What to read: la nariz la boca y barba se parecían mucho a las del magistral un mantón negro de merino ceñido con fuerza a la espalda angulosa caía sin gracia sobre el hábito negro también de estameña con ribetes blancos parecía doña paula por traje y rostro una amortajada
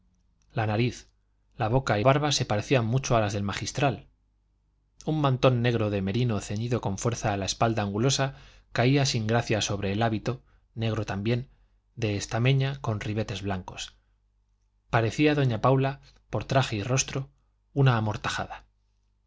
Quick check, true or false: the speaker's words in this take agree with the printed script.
true